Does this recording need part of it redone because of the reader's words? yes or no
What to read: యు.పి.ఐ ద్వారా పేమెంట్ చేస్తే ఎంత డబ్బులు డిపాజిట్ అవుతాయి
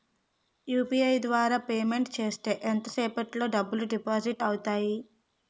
yes